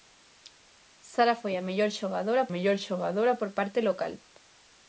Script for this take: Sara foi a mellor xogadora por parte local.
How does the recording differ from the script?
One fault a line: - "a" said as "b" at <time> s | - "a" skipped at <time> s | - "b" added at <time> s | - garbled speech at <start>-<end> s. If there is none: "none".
- "mellor xogadora" added at 2.5 s